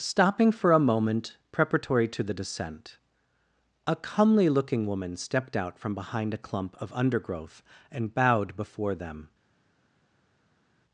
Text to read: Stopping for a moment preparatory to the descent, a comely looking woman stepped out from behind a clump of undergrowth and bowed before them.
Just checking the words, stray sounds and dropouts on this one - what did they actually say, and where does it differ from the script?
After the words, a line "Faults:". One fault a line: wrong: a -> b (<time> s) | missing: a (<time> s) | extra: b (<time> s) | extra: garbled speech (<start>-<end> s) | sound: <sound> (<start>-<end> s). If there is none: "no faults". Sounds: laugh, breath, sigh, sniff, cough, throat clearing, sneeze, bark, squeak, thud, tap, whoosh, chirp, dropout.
Stopping for a moment preparatory to the descent, a comely looking woman stepped out from behind a clump of undergrowth and bowed before them.
Faults:
no faults